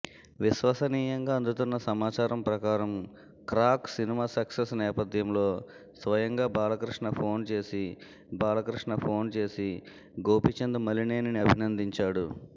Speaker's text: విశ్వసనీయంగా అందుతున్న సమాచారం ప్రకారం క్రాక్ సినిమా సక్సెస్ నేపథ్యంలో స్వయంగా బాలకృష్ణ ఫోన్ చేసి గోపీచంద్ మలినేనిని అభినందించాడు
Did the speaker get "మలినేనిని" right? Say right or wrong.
right